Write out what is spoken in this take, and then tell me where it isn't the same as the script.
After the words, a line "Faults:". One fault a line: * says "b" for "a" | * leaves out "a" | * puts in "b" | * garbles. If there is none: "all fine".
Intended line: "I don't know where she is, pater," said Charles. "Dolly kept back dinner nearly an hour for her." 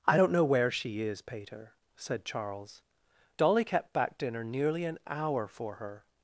"I don't know where she is, pater," said Charles. "Dolly kept back dinner nearly an hour for her."
Faults:
all fine